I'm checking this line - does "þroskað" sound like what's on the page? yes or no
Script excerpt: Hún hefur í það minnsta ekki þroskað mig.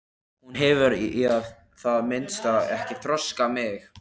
yes